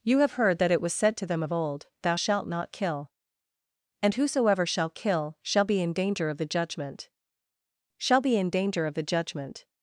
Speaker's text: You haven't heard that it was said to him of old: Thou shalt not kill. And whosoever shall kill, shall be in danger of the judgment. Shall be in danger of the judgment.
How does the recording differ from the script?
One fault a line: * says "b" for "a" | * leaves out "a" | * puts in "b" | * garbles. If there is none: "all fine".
* says "have" for "haven't"
* says "them" for "him"